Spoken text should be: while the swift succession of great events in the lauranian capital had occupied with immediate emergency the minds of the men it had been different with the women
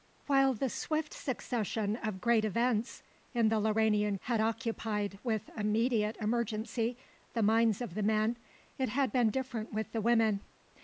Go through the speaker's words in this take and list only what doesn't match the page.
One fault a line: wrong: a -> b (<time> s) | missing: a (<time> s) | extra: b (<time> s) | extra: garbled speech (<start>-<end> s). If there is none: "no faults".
missing: capital (4.2 s)